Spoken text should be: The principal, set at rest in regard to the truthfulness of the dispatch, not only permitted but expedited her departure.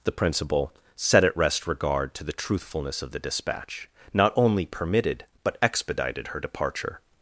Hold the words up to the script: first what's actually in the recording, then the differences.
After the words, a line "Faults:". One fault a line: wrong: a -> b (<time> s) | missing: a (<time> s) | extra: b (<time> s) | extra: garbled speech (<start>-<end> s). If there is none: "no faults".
The principal, set at rest regard to the truthfulness of the dispatch, not only permitted but expedited her departure.
Faults:
missing: in (1.7 s)